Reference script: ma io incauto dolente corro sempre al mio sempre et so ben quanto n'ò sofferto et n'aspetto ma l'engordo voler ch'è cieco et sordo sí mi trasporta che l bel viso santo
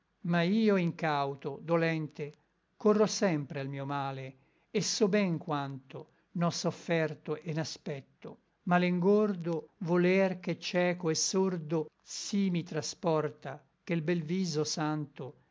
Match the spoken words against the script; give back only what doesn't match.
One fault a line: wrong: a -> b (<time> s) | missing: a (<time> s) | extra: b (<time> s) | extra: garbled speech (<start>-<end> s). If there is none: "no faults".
wrong: sempre -> male (3.9 s)